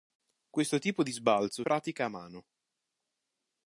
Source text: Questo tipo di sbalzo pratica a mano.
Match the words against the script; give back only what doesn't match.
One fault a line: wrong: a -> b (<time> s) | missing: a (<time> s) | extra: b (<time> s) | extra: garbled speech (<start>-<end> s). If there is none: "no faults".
no faults